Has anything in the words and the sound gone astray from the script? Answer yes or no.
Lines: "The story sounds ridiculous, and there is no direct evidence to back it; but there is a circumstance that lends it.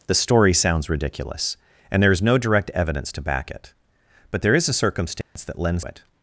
yes